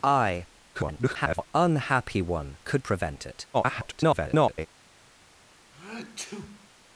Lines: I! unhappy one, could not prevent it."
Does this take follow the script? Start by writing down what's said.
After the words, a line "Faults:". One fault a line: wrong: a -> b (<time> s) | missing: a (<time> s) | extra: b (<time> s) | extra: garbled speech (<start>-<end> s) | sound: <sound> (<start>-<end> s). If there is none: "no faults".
I! [garbled] unhappy one, could prevent it." [garbled]
Faults:
extra: garbled speech (0.7-1.5 s)
missing: not (2.9 s)
extra: garbled speech (3.5-4.7 s)
sound: sneeze (5.7-6.7 s)